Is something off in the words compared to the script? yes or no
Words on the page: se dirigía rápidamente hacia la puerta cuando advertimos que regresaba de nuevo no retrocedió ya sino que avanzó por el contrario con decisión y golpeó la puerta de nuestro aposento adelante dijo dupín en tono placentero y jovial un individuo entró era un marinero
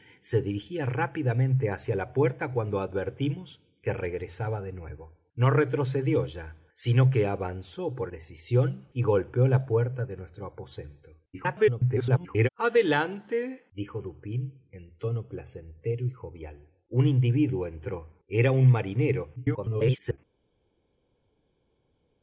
yes